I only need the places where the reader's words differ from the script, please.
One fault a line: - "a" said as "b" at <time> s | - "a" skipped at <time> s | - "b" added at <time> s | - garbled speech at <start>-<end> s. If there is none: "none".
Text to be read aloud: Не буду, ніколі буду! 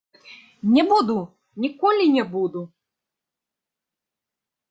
- "не" added at 2.1 s